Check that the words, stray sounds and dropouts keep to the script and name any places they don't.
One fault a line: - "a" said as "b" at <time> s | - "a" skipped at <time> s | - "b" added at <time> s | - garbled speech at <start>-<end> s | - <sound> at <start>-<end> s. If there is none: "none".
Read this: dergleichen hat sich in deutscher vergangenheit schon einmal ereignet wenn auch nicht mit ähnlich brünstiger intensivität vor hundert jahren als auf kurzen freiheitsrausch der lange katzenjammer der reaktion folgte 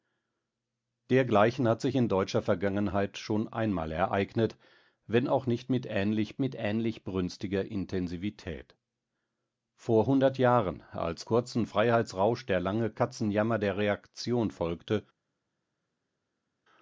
- "mit ähnlich" added at 6.4 s
- "auf" skipped at 11.3 s